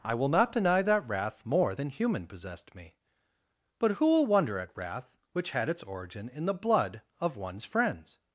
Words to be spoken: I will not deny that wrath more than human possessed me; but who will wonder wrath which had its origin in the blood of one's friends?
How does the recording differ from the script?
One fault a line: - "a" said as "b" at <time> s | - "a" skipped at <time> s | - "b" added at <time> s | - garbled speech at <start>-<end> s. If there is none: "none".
- "at" added at 4.6 s